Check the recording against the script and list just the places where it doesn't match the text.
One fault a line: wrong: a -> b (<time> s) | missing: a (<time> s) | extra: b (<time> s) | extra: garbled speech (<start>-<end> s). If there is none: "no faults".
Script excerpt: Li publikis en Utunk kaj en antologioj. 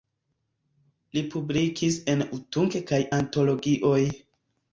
missing: en (3.0 s)